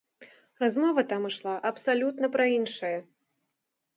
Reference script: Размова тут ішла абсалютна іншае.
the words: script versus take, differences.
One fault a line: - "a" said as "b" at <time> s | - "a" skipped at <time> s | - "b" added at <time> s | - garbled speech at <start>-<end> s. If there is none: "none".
- "тут" said as "там" at 1.1 s
- "пра" added at 2.4 s